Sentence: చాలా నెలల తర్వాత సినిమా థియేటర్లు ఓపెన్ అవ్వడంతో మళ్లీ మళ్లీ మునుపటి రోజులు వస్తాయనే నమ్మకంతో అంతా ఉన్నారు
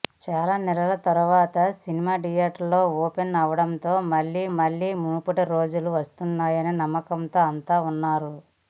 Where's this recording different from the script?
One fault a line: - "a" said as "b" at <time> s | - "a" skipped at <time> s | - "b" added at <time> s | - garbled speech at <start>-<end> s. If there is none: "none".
none